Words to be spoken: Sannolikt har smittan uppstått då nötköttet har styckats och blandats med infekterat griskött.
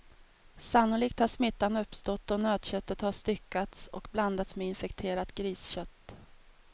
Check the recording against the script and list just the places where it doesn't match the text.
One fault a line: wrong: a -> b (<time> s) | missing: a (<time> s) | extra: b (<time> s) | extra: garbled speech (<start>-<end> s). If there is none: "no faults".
no faults